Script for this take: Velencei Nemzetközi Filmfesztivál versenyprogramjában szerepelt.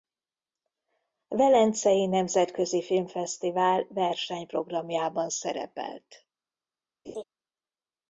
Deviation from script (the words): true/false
false